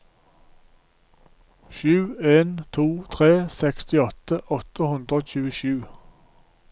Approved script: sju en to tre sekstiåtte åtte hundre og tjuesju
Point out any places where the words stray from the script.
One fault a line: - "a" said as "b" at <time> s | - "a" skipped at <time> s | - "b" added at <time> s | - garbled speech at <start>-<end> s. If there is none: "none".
none